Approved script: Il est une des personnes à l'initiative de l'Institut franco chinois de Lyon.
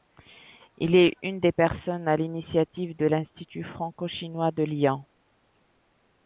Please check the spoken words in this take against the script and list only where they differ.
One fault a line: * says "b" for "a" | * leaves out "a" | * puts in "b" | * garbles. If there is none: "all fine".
all fine